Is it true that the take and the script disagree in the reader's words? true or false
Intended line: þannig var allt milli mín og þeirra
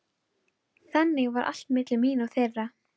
false